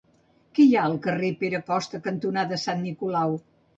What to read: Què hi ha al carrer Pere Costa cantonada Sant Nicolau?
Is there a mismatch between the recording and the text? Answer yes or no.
no